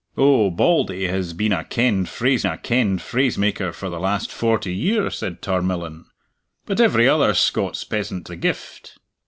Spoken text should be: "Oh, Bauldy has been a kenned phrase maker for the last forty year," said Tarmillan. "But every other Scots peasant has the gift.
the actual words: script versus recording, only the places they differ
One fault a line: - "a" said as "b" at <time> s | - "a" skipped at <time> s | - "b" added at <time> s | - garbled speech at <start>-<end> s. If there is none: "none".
- "a kenned phrase" added at 2.4 s
- "has" skipped at 8.3 s